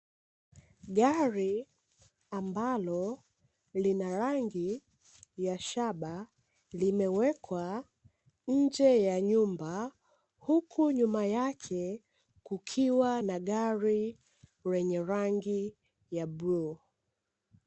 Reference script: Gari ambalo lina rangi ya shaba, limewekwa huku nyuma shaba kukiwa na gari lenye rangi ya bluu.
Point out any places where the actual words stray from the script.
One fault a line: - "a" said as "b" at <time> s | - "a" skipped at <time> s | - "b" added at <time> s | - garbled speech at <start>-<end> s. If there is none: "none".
- "nje ya nyumba" added at 8.5 s
- "shaba" said as "yake" at 11.3 s